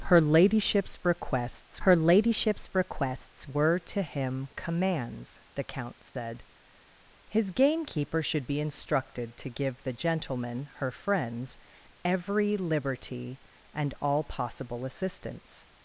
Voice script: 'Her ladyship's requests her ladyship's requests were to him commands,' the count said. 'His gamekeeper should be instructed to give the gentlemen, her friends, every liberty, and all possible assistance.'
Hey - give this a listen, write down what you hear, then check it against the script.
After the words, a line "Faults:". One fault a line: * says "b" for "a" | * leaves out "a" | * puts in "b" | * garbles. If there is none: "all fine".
'Her ladyship's requests her ladyship's requests were to him commands,' the count said. 'His gamekeeper should be instructed to give the gentlemen, her friends, every liberty, and all possible assistance.'
Faults:
all fine